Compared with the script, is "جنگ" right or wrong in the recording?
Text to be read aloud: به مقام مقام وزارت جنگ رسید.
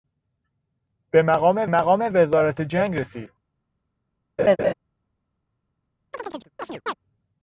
right